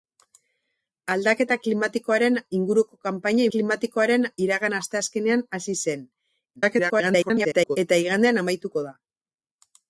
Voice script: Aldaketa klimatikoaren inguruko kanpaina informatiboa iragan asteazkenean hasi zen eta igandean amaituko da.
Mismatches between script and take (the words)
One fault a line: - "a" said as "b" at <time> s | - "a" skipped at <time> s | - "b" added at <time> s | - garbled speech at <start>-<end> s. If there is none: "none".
- "informatiboa" said as "klimatikoaren" at 3.5 s
- garbled speech at 6.6-7.8 s